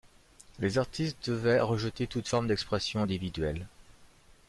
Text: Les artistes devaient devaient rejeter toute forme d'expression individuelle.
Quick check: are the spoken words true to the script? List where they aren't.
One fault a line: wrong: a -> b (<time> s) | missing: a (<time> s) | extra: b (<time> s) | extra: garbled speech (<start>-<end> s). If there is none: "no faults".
missing: devaient (1.6 s)